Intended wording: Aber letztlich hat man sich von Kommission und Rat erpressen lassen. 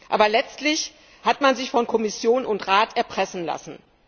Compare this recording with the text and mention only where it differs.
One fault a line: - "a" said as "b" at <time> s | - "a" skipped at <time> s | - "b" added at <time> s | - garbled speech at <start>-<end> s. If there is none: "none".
none